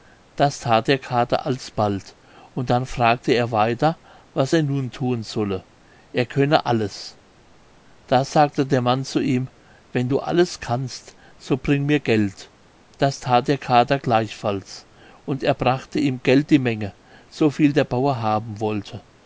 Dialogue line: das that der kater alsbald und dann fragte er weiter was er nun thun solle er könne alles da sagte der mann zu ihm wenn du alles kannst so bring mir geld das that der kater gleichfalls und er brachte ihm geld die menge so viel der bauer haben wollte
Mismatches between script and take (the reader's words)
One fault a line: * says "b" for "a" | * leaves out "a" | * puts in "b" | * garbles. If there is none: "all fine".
all fine